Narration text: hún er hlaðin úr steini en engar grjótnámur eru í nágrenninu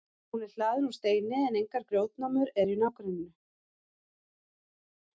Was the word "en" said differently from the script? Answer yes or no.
no